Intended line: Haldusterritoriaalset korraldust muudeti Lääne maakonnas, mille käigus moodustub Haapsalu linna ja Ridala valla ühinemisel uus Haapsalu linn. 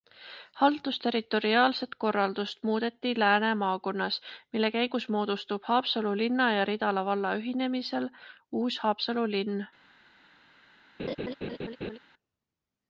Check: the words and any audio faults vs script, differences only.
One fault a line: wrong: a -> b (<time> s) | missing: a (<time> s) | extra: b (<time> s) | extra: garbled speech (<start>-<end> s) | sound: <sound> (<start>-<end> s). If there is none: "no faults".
sound: laugh (11.0-12.0 s)